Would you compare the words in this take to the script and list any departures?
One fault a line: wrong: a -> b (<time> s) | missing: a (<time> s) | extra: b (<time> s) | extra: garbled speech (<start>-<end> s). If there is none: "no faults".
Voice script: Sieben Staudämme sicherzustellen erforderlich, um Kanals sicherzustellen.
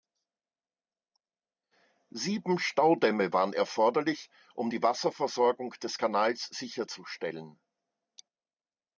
wrong: sicherzustellen -> waren (3.3 s)
extra: die Wasserversorgung des (4.7 s)